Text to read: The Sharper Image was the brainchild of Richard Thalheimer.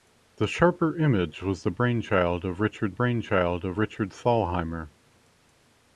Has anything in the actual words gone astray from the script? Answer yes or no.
yes